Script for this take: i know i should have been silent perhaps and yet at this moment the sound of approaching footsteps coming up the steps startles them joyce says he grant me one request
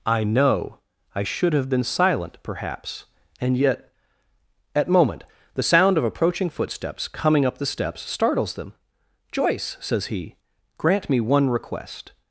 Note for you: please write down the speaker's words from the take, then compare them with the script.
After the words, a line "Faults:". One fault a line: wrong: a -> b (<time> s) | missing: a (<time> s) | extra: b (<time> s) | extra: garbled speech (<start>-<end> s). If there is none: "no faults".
i know i should have been silent perhaps and yet at moment the sound of approaching footsteps coming up the steps startles them joyce says he grant me one request
Faults:
missing: this (4.9 s)